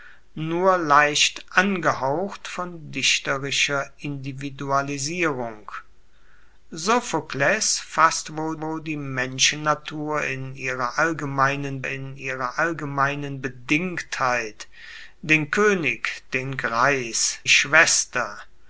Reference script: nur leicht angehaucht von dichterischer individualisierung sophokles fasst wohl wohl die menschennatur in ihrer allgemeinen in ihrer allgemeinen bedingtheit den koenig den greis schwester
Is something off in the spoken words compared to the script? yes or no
no